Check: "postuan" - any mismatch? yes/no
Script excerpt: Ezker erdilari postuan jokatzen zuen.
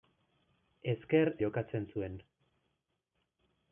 yes